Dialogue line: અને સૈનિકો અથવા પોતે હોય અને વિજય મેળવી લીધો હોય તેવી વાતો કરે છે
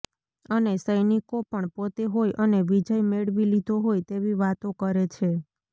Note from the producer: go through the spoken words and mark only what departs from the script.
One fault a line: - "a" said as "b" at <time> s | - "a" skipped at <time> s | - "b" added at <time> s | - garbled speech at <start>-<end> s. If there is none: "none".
- "અથવા" said as "પણ" at 1.4 s